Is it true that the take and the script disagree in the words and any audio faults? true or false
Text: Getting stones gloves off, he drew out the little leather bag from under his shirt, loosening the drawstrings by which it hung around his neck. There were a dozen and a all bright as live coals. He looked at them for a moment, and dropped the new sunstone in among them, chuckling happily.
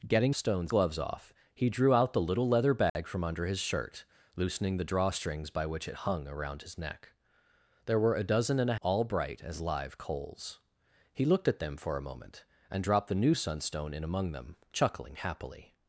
true